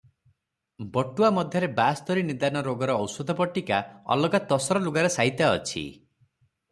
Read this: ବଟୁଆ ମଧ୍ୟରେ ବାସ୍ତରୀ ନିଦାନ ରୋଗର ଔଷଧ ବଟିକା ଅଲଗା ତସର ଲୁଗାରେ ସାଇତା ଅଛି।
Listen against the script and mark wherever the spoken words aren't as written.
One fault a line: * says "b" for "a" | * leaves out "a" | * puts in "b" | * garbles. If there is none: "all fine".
all fine